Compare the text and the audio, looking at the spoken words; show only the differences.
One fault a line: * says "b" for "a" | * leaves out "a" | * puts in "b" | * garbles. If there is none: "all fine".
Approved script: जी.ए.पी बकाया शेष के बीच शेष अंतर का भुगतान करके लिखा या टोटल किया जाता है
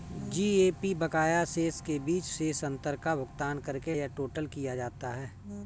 * leaves out "लिखा"